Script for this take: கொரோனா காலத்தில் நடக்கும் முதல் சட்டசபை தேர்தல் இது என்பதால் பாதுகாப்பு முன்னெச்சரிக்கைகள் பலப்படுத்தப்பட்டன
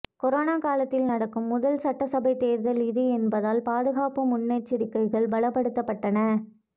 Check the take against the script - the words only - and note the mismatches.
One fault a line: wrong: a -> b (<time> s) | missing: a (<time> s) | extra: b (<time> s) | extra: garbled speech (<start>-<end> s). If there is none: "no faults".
no faults